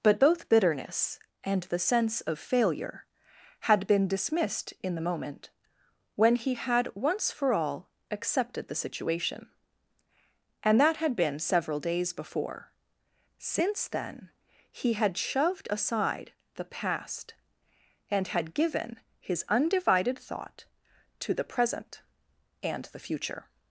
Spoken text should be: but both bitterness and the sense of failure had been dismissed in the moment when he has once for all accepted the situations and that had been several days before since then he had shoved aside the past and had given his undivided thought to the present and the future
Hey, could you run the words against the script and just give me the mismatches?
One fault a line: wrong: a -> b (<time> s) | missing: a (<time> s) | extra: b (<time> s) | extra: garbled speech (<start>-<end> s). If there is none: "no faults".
wrong: has -> had (6.5 s)
wrong: situations -> situation (8.8 s)